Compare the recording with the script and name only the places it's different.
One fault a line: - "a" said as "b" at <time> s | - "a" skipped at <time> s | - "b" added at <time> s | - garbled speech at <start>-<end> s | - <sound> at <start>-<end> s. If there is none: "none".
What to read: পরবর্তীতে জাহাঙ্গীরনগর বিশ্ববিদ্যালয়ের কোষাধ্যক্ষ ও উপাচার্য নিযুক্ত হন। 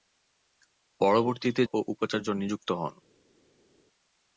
- "জাহাঙ্গীরনগর বিশ্ববিদ্যালয়ের কোষাধ্যক্ষ" skipped at 1.6 s